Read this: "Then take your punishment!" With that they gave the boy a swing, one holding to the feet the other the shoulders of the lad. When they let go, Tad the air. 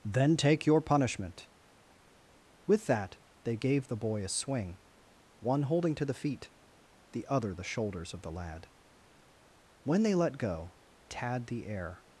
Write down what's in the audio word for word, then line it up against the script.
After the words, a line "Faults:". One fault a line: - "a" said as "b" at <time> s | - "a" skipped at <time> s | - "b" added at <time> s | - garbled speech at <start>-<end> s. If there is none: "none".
"Then take your punishment!" With that they gave the boy a swing, one holding to the feet the other the shoulders of the lad. When they let go, Tad the air.
Faults:
none